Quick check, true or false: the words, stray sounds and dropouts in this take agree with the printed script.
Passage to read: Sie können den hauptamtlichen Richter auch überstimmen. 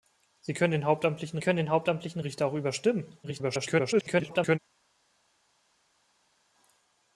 false